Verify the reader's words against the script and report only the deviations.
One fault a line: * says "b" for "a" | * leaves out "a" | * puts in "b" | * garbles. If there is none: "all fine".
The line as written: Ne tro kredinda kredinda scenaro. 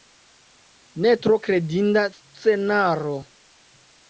* leaves out "kredinda"